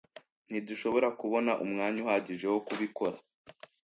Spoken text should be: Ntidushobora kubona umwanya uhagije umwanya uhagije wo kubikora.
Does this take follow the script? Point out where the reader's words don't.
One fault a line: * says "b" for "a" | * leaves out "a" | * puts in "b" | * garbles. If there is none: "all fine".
* leaves out "umwanya uhagije"